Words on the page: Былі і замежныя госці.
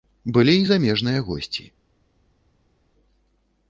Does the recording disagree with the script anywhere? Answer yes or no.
no